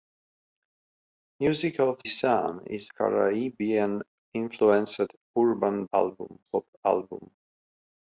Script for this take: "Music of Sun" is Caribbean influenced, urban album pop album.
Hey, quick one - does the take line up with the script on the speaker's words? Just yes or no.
yes